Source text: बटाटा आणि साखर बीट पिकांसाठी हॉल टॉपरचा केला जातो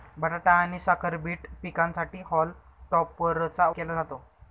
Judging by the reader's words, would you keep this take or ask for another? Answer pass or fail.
pass